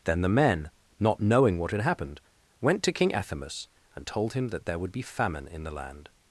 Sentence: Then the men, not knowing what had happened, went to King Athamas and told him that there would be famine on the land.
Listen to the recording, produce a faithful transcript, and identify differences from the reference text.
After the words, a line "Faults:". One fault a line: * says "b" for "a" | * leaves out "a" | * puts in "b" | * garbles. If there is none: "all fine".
Then the men, not knowing what had happened, went to King Athamas and told him that there would be famine in the land.
Faults:
* says "in" for "on"